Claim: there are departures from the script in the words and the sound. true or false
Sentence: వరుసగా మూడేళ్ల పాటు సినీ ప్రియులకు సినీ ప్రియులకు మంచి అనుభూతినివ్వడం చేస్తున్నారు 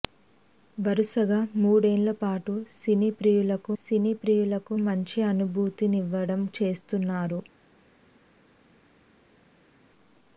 false